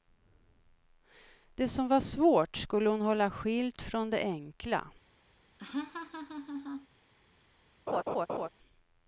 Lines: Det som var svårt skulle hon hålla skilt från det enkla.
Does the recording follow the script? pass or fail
pass